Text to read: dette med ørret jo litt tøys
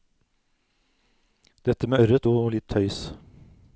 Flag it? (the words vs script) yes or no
no